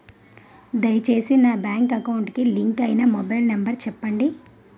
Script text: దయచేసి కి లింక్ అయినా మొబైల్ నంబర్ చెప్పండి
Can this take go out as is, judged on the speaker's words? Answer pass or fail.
fail